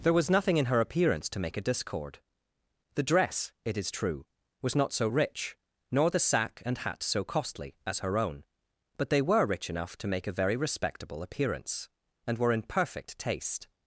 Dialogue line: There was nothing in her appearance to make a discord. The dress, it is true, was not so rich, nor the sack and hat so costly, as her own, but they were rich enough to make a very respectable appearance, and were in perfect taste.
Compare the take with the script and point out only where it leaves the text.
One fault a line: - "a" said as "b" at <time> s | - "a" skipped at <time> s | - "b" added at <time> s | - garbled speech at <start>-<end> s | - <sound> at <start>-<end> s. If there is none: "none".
none